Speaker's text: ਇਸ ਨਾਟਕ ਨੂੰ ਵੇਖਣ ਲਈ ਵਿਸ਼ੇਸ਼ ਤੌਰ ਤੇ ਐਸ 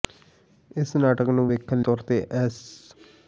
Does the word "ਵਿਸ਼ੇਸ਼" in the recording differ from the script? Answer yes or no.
yes